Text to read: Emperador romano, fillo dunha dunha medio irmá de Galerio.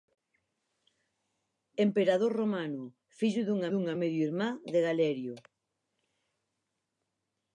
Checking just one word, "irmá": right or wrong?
right